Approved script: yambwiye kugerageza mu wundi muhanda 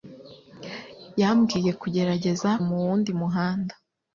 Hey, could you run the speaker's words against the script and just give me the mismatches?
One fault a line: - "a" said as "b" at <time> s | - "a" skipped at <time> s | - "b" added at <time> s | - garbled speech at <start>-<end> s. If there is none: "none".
none